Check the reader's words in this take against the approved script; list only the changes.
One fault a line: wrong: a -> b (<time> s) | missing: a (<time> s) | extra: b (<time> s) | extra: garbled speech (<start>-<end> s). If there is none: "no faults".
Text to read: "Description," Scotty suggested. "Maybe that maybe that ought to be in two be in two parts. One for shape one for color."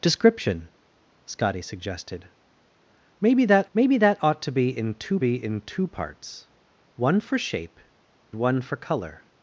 no faults